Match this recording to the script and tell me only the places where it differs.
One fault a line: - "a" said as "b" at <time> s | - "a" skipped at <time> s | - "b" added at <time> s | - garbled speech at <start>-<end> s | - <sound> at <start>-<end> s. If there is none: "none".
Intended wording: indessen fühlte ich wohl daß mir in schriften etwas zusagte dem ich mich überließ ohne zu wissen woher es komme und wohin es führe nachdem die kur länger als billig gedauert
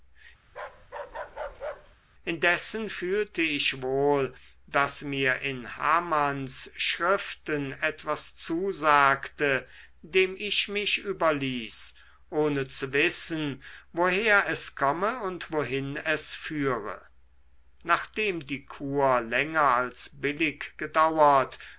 - bark at 0.5-2.0 s
- "hamanns" added at 5.8 s